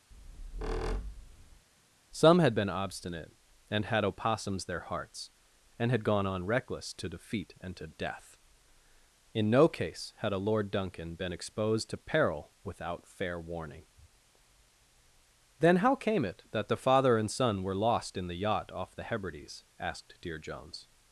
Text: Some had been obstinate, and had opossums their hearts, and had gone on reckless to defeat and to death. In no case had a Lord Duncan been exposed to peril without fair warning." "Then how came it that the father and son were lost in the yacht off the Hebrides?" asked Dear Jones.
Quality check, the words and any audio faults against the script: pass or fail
fail